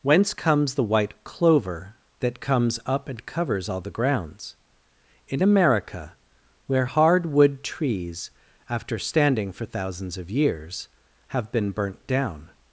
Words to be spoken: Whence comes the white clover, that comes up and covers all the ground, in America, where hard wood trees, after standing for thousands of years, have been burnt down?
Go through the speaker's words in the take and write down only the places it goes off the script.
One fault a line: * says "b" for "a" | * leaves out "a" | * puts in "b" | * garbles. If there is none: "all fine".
* says "grounds" for "ground"